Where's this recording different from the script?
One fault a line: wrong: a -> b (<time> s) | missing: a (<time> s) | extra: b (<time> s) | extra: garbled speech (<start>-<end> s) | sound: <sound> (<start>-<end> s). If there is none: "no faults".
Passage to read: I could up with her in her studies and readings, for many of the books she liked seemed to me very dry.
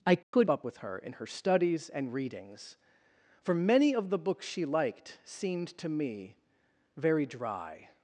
sound: dropout (0.2-0.3 s)